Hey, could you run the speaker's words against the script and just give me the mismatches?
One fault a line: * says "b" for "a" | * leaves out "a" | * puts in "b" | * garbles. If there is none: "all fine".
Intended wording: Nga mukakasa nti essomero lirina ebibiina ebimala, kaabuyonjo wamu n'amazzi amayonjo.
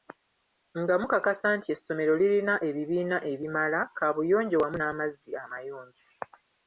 all fine